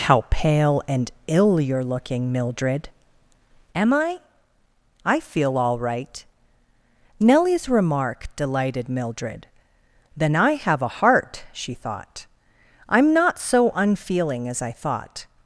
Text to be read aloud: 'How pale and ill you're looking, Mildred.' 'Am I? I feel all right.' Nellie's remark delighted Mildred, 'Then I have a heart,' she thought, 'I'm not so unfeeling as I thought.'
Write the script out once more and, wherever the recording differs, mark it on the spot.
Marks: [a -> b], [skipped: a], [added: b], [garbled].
'How pale and ill you're looking, Mildred.' 'Am I? I feel all right.' Nellie's remark delighted Mildred, 'Then I have a heart,' she thought, 'I'm not so unfeeling as I thought.'